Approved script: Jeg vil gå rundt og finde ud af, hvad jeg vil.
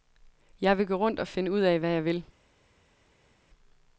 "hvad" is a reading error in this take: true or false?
false